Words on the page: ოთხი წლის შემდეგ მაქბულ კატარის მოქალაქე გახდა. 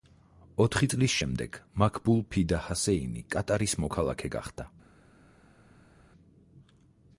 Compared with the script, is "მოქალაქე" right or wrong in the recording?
right